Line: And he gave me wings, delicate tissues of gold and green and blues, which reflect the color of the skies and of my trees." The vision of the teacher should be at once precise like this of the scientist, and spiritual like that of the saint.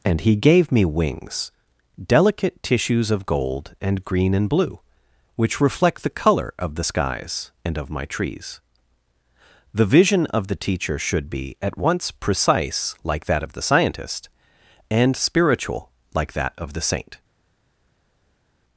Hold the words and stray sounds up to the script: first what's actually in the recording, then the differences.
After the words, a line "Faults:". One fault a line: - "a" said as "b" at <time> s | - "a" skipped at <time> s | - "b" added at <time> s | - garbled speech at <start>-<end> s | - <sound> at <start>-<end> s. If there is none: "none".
And he gave me wings, delicate tissues of gold and green and blue, which reflect the color of the skies and of my trees." The vision of the teacher should be at once precise like that of the scientist, and spiritual like that of the saint.
Faults:
- "blues" said as "blue" at 4.5 s
- "this" said as "that" at 13.3 s